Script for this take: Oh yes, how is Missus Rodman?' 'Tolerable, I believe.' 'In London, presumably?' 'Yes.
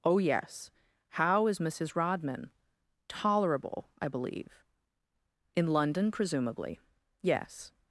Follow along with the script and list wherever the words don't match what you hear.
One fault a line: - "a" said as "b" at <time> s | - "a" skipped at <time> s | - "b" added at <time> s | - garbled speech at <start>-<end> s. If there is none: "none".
none